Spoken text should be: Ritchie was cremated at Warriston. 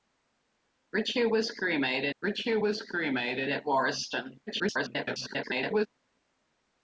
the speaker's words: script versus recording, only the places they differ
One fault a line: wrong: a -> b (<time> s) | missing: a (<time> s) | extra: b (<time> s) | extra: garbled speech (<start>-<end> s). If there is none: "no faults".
extra: ritchie was cremated (2.2 s)
extra: garbled speech (4.5-5.9 s)